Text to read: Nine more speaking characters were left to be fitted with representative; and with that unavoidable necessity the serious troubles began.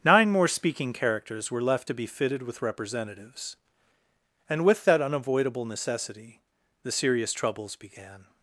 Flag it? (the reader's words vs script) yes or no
yes